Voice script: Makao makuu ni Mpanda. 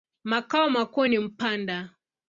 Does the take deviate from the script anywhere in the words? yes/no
no